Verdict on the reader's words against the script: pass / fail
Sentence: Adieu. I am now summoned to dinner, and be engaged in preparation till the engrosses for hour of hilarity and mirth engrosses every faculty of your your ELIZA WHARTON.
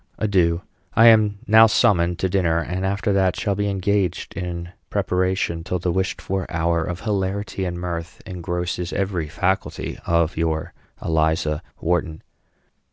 fail